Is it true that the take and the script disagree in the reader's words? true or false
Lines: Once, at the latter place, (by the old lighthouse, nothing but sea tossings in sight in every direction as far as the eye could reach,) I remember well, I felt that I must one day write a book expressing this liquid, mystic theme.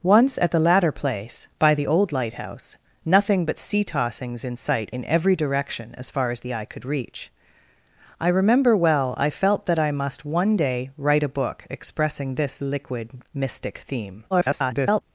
true